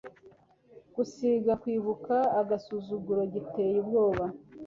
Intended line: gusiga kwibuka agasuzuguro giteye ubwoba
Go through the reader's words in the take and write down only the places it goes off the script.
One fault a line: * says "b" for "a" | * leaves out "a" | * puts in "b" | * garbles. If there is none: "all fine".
all fine